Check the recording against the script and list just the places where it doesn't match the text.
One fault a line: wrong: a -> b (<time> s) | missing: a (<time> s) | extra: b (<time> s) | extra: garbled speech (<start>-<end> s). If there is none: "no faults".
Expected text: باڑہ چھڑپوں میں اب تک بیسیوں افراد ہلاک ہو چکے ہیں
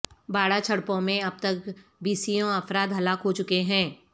no faults